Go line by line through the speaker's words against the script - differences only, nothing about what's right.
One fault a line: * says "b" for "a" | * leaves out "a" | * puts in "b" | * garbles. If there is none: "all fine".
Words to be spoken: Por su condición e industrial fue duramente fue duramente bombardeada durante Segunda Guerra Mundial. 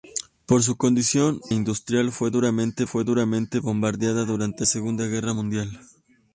all fine